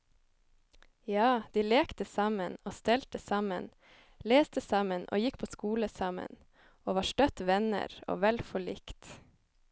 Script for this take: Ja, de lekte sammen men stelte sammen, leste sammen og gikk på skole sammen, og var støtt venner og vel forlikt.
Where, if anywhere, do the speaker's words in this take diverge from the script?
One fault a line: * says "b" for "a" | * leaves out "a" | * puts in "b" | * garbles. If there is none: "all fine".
* says "og" for "men"